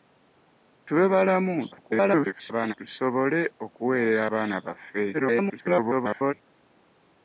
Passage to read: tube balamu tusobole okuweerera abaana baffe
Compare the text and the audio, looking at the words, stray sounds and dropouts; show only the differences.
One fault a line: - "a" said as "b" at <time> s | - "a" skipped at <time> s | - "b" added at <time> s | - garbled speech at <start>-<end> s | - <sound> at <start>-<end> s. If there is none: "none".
- garbled speech at 1.7-2.7 s
- garbled speech at 5.1-6.3 s